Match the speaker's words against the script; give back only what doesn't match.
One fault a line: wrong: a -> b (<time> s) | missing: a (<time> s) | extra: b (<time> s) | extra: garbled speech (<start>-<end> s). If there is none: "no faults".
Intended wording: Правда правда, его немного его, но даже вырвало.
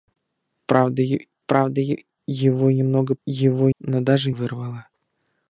no faults